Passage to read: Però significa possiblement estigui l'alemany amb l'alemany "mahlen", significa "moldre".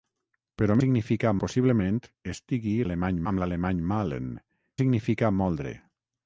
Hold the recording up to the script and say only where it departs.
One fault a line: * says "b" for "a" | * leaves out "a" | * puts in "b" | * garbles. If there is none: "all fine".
all fine